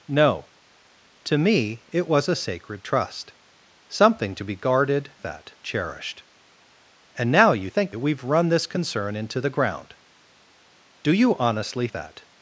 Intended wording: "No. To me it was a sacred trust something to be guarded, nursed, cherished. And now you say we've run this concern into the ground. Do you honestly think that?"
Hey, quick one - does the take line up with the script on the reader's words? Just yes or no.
no